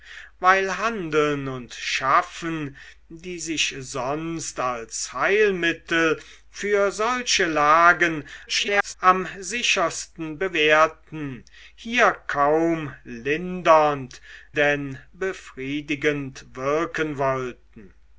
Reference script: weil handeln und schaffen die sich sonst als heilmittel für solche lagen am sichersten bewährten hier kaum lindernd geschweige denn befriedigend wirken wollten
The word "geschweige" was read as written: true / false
false